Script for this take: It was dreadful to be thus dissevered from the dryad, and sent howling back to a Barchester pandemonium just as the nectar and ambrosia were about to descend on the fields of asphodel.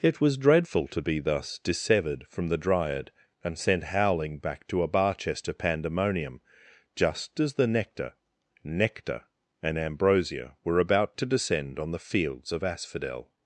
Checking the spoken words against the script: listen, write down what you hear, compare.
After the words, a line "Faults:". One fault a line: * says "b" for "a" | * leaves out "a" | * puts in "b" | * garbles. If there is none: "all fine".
It was dreadful to be thus dissevered from the dryad, and sent howling back to a Barchester pandemonium just as the nectar nectar and ambrosia were about to descend on the fields of asphodel.
Faults:
* puts in "nectar"